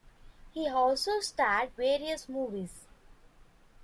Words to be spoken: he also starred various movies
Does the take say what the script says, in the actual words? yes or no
yes